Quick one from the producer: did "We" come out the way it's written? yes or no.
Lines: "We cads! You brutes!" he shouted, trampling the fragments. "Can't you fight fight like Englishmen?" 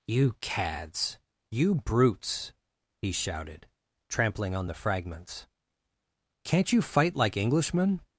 no